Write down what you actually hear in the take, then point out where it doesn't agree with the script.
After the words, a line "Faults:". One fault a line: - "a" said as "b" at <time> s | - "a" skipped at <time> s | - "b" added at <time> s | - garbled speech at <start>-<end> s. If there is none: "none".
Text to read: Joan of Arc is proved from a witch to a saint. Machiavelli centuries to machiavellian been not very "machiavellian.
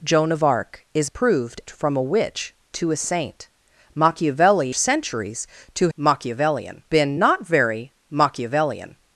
Joan of Arc is proved from a witch to a saint. Machiavelli centuries to machiavellian been not very "machiavellian.
Faults:
none